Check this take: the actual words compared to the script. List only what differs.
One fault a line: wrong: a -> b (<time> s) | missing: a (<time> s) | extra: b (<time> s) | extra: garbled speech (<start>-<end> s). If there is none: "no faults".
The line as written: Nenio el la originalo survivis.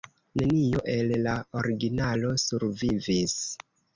no faults